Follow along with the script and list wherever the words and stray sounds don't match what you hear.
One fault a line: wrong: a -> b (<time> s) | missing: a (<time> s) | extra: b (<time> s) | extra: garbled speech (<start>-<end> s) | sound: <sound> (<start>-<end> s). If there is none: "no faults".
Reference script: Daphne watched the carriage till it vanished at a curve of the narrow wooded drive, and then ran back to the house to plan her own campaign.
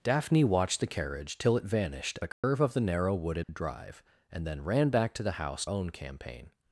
missing: at (2.2 s)
sound: dropout (2.3-2.4 s)
sound: dropout (3.4-3.5 s)
missing: to plan her (5.6 s)